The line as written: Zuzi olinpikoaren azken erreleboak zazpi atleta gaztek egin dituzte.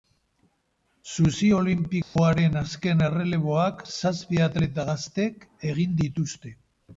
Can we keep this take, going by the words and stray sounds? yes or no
no